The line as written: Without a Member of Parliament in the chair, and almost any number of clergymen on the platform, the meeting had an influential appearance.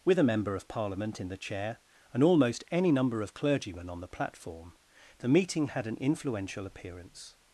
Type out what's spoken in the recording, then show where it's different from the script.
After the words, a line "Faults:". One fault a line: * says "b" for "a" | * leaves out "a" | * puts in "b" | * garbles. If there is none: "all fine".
With a Member of Parliament in the chair, and almost any number of clergymen on the platform, the meeting had an influential appearance.
Faults:
* says "With" for "Without"